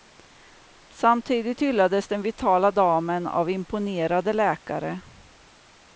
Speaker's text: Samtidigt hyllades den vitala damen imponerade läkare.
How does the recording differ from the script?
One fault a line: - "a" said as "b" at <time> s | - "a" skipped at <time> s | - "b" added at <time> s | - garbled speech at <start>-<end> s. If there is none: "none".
- "av" added at 3.3 s